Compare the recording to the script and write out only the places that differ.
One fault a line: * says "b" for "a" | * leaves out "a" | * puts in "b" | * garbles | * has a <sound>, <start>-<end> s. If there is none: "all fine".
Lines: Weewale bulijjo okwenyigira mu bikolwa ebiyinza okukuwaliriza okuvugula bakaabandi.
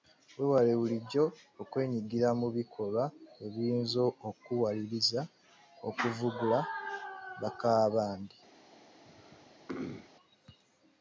* has a throat clearing, 9.0-10.1 s